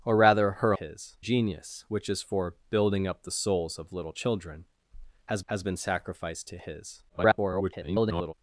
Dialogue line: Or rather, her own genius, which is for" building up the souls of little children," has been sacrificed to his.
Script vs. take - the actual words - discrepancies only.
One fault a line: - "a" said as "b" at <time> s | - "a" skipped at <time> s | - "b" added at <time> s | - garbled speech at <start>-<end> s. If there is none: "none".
- "own" said as "his" at 0.7 s
- "has" added at 5.5 s
- garbled speech at 7.1-8.3 s